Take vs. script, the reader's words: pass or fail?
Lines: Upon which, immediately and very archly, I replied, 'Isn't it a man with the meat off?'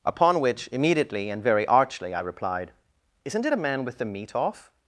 pass